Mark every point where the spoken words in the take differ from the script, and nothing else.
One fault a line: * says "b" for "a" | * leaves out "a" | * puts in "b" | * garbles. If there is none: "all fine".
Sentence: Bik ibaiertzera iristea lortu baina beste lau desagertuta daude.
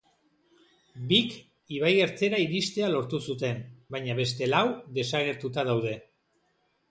* puts in "zuten"